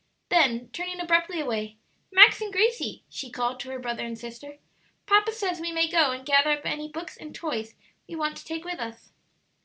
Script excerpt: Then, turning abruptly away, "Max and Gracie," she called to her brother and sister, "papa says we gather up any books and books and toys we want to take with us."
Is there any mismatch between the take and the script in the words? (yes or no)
yes